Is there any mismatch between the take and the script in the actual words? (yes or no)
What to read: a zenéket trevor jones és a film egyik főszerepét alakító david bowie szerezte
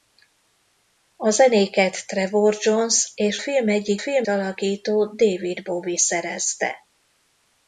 yes